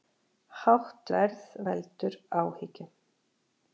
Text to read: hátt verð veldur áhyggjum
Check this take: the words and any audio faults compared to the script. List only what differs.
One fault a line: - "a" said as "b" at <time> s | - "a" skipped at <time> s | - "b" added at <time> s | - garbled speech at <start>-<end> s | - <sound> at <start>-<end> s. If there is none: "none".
none